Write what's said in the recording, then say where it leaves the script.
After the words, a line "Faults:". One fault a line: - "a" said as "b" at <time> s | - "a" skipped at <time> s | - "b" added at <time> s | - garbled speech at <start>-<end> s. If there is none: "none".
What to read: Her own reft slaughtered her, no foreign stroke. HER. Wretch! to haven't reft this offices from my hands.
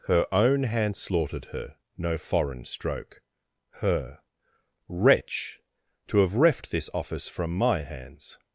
Her own hand slaughtered her, no foreign stroke. HER. Wretch! to have reft this office from my hands.
Faults:
- "reft" said as "hand" at 0.6 s
- "haven't" said as "have" at 6.2 s
- "offices" said as "office" at 6.9 s